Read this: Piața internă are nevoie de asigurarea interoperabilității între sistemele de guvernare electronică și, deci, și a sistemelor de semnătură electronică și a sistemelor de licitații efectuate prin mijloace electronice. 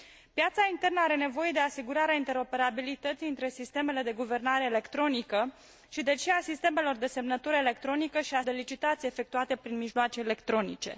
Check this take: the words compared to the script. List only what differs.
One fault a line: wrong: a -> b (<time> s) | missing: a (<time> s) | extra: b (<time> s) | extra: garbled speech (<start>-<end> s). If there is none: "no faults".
missing: sistemelor (8.4 s)